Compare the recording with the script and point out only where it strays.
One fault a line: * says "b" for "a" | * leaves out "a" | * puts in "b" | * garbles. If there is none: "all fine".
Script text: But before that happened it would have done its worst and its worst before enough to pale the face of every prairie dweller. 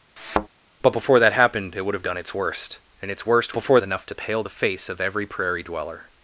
all fine